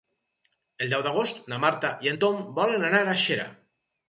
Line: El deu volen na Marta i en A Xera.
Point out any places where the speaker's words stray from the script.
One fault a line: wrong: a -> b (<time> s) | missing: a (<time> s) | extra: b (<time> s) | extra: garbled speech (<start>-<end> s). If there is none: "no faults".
wrong: volen -> d'agost (1.1 s)
extra: Tom volen anar (2.2 s)